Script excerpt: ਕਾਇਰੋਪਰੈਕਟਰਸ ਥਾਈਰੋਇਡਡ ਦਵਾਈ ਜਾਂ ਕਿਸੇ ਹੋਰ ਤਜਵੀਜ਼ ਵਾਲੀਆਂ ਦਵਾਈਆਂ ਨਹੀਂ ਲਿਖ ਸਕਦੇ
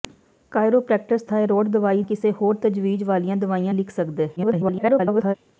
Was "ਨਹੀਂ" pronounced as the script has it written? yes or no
no